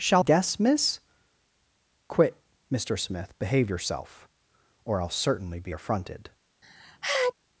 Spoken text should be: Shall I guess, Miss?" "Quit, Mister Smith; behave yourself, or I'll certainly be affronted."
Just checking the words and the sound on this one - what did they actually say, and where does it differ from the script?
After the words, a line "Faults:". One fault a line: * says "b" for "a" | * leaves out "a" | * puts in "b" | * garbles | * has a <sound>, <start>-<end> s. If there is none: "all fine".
Shall guess, Miss?" "Quit, Mister Smith; behave yourself, or I'll certainly be affronted."
Faults:
* leaves out "I"
* has a sneeze, 6.6-7.3 s